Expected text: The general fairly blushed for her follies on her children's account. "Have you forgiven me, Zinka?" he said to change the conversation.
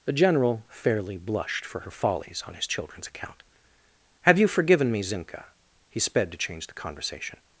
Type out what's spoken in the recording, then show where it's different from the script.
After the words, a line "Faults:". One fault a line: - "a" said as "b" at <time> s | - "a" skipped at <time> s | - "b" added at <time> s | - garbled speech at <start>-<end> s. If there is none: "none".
The general fairly blushed for her follies on his children's account. "Have you forgiven me, Zinka?" he sped to change the conversation.
Faults:
- "her" said as "his" at 2.5 s
- "said" said as "sped" at 6.0 s